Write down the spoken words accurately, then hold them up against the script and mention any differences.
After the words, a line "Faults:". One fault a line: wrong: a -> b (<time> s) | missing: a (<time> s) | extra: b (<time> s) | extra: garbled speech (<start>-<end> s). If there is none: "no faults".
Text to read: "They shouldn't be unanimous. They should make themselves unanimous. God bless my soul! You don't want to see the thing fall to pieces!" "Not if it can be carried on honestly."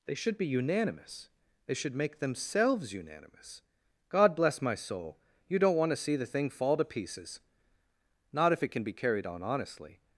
"They should be unanimous. They should make themselves unanimous. God bless my soul! You don't want to see the thing fall to pieces!" "Not if it can be carried on honestly."
Faults:
wrong: shouldn't -> should (0.1 s)